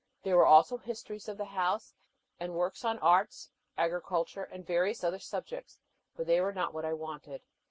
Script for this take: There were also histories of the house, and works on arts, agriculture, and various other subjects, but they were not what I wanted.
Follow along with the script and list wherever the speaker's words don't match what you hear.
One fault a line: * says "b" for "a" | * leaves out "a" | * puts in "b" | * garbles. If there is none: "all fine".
all fine